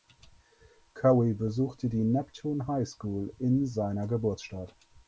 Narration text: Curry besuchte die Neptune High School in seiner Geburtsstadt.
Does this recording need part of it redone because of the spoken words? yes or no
no